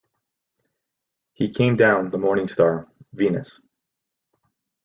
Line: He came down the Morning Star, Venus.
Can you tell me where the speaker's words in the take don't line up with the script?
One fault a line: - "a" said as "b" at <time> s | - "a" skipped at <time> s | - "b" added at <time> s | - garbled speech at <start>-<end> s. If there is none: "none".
none